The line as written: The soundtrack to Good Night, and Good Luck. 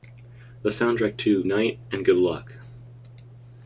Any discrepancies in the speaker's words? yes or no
yes